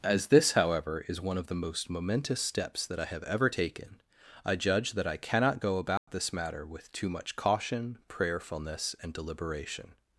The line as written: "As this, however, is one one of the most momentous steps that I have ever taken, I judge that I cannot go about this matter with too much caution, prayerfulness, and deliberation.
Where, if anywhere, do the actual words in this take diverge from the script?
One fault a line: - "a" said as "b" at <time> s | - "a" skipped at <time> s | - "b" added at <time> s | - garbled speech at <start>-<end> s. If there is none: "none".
- "one" skipped at 1.4 s